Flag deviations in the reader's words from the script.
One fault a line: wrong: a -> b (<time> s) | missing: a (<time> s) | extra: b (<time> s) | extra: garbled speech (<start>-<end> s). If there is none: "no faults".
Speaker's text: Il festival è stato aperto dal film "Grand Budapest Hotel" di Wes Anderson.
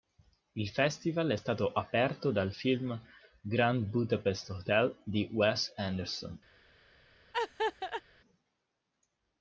no faults